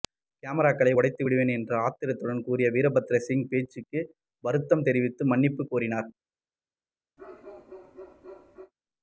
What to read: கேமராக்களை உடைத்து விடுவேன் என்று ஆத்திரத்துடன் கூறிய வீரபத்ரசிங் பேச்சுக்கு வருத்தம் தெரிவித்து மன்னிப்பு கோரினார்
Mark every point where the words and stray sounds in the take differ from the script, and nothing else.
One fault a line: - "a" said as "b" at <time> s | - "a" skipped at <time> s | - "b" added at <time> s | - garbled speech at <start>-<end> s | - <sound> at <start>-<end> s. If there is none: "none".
- bark at 7.2-8.7 s